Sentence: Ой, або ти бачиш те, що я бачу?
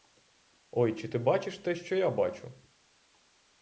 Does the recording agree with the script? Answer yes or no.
no